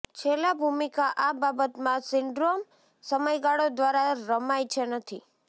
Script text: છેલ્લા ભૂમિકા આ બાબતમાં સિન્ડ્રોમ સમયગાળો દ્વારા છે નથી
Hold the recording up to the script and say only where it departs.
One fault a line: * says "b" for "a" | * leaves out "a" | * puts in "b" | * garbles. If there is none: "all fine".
* puts in "રમાય"